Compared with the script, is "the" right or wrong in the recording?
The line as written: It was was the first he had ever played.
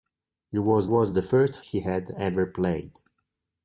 right